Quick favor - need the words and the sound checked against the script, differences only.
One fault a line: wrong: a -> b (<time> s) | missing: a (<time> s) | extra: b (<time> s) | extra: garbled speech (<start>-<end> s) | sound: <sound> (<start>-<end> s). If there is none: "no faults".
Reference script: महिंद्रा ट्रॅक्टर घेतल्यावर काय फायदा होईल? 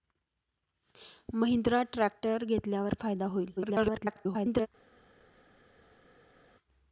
missing: काय (2.9 s)
extra: garbled speech (3.6-4.7 s)